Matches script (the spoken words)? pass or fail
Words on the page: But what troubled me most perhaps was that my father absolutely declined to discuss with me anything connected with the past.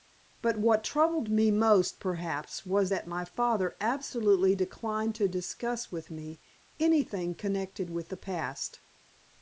pass